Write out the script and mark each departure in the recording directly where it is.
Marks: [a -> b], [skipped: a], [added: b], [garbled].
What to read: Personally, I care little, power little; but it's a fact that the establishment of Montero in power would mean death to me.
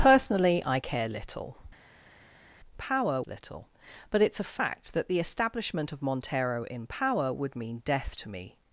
Personally, I care little, power little; but it's a fact that the establishment of Montero in power would mean death to me.